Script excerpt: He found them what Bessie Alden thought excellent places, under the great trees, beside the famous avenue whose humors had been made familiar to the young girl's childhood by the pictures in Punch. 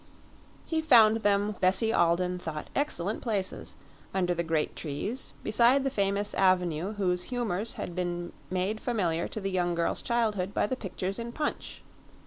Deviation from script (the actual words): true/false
true